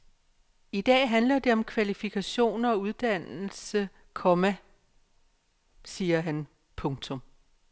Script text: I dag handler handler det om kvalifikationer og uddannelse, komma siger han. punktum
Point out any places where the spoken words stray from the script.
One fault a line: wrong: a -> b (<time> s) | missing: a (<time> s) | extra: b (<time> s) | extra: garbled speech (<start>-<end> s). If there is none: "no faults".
missing: handler (1.4 s)